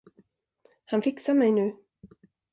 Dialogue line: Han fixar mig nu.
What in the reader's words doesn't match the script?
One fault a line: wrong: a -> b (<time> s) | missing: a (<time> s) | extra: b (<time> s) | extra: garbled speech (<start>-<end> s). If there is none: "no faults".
no faults